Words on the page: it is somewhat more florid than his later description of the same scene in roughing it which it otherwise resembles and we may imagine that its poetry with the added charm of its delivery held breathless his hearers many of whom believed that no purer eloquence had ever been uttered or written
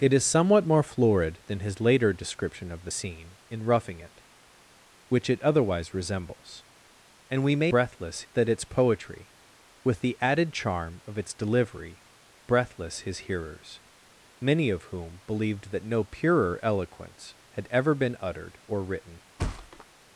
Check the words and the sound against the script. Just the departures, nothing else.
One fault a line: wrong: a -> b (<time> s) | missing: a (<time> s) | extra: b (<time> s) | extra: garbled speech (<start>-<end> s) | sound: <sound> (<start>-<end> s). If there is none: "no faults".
missing: same (2.9 s)
wrong: imagine -> breathless (7.7 s)
missing: held (12.1 s)
sound: thud (19.4-19.9 s)